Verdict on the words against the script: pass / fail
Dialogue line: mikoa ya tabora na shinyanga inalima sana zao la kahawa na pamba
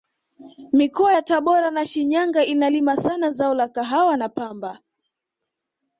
pass